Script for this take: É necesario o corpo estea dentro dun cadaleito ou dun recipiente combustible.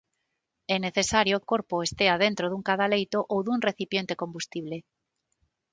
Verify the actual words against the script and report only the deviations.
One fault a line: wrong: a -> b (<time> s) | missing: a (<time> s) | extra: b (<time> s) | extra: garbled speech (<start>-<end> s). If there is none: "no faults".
no faults